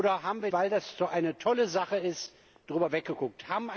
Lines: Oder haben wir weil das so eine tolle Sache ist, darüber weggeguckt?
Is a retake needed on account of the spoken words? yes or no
no